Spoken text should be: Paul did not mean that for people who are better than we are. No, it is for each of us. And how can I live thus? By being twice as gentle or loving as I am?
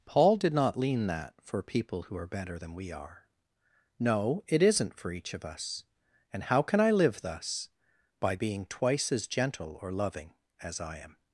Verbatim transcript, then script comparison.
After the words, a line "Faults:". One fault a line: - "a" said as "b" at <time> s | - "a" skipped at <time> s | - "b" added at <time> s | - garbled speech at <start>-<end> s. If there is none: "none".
Paul did not lean that for people who are better than we are. No, it isn't for each of us. And how can I live thus? By being twice as gentle or loving as I am?
Faults:
- "mean" said as "lean" at 0.8 s
- "is" said as "isn't" at 4.6 s